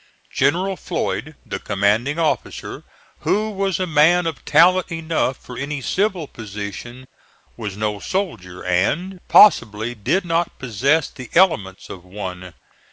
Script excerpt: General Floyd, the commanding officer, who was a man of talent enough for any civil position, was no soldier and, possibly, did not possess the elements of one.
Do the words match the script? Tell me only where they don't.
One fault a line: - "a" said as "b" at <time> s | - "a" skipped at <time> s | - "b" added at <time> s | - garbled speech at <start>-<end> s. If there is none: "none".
none